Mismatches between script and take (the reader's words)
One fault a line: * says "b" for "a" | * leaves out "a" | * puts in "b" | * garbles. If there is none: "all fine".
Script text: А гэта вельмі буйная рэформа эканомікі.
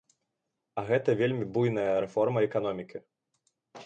all fine